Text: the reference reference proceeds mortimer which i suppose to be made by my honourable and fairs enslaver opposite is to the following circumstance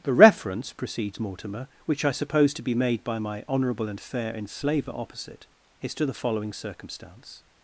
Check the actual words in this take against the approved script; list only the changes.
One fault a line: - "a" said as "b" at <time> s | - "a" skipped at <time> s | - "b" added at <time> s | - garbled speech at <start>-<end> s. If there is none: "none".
- "reference" skipped at 0.7 s
- "fairs" said as "fair" at 4.0 s